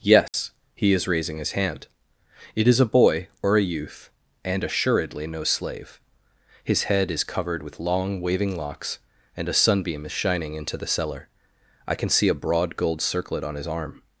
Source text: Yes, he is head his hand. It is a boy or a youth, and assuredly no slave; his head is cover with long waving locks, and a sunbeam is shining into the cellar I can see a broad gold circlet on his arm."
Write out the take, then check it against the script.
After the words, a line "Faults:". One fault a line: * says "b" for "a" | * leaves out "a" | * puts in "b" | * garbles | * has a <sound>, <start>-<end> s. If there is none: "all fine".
Yes, he is raising his hand. It is a boy or a youth, and assuredly no slave; his head is covered with long waving locks, and a sunbeam is shining into the cellar I can see a broad gold circlet on his arm."
Faults:
* has a dropout, 0.3-0.3 s
* says "raising" for "head"
* says "covered" for "cover"